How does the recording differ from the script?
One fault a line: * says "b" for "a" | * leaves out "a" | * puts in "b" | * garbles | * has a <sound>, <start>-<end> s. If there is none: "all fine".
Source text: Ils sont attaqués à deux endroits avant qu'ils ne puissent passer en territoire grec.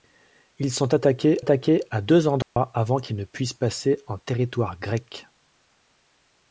* puts in "attaqués"
* has a dropout, 2.4-2.6 s